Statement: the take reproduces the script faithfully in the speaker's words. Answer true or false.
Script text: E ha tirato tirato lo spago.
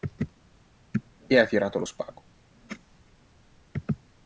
false